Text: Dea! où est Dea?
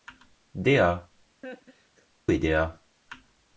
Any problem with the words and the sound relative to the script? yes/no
yes